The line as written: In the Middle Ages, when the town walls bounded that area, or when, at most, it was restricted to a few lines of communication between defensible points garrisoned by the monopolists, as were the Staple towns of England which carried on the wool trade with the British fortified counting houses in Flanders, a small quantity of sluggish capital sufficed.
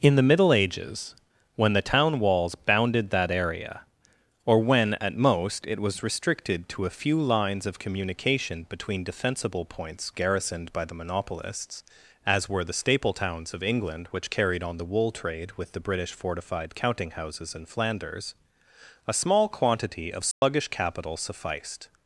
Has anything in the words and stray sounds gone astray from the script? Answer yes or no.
yes